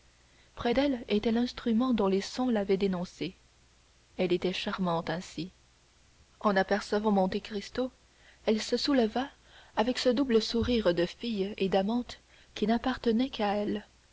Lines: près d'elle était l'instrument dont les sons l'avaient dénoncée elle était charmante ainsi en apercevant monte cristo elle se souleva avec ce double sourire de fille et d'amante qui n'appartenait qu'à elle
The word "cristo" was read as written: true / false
true